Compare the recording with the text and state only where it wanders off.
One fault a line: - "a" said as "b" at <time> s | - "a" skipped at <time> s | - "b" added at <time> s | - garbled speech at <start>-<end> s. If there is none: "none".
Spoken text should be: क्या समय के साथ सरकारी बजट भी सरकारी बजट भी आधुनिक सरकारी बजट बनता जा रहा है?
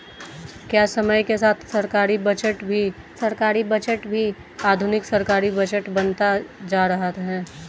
none